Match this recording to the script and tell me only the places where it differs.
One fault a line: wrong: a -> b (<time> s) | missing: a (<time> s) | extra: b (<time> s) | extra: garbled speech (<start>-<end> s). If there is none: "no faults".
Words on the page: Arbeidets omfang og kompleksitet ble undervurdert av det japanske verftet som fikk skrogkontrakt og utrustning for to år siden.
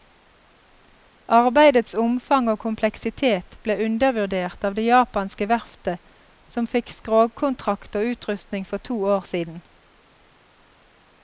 no faults